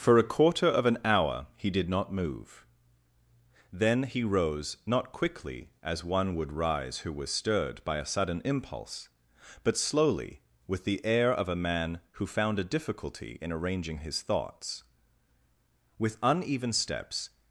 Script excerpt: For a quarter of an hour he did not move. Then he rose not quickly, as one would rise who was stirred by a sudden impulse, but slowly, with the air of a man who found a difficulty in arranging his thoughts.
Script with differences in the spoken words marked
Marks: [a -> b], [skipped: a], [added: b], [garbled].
For a quarter of an hour he did not move. Then he rose not quickly, as one would rise who was stirred by a sudden impulse, but slowly, with the air of a man who found a difficulty in arranging his thoughts. [added: With uneven steps]